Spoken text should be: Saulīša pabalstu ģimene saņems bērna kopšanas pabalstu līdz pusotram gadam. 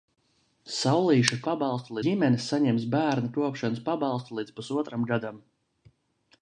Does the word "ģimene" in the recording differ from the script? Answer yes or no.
no